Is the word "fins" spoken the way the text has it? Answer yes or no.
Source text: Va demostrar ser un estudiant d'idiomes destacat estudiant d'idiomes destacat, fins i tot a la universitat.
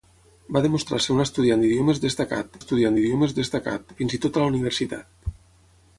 yes